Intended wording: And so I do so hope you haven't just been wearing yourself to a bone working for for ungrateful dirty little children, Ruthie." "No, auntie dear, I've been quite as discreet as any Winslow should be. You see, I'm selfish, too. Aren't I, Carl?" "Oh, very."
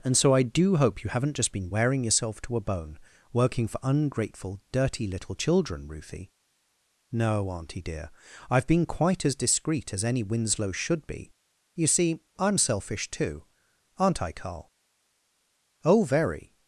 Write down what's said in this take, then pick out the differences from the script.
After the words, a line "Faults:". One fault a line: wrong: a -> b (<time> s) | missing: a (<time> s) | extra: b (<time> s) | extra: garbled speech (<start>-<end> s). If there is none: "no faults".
And so I do hope you haven't just been wearing yourself to a bone working for ungrateful dirty little children, Ruthie." "No, auntie dear, I've been quite as discreet as any Winslow should be. You see, I'm selfish, too. Aren't I, Carl?" "Oh, very."
Faults:
missing: so (0.8 s)
missing: for (3.8 s)